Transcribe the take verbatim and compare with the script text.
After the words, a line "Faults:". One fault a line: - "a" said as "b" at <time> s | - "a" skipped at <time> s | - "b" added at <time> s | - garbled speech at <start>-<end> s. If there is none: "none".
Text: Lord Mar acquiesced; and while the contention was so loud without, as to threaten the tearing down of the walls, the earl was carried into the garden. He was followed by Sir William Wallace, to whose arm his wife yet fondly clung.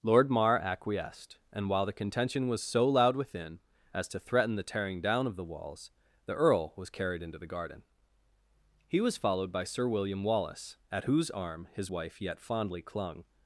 Lord Mar acquiesced; and while the contention was so loud within, as to threaten the tearing down of the walls, the earl was carried into the garden. He was followed by Sir William Wallace, at whose arm his wife yet fondly clung.
Faults:
- "without" said as "within" at 3.1 s
- "to" said as "at" at 10.9 s